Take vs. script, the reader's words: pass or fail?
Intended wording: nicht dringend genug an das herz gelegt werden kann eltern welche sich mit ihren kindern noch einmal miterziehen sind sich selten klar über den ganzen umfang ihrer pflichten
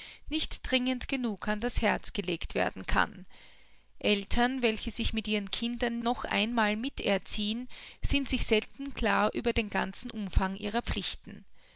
pass